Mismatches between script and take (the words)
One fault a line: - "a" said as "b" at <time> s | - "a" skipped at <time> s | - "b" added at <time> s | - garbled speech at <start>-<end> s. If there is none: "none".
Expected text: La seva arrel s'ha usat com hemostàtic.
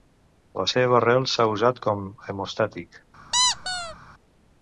none